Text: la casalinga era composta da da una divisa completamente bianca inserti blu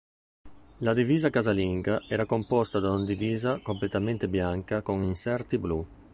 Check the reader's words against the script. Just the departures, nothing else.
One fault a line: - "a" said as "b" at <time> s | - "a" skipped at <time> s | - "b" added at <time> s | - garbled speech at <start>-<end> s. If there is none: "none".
- "divisa" added at 0.9 s
- "da" skipped at 2.9 s
- "con" added at 4.8 s